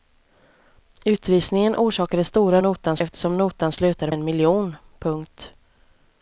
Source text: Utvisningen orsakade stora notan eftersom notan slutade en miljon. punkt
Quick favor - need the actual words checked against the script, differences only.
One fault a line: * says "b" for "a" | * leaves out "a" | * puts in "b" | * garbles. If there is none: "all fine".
all fine